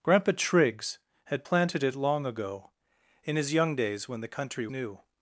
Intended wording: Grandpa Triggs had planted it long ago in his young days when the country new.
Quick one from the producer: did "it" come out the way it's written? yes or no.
yes